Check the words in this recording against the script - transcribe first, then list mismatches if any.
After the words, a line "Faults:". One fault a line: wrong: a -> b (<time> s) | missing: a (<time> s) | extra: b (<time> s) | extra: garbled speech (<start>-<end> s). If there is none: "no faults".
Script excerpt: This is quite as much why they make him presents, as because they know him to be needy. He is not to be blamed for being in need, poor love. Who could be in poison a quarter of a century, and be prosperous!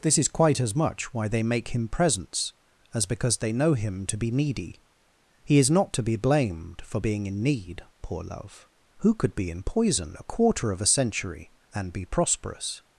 This is quite as much why they make him presents, as because they know him to be needy. He is not to be blamed for being in need, poor love. Who could be in poison a quarter of a century, and be prosperous!
Faults:
no faults